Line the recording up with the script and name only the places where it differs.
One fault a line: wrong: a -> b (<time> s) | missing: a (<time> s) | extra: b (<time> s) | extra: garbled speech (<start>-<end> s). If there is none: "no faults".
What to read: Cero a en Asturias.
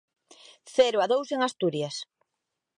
extra: dous (1.1 s)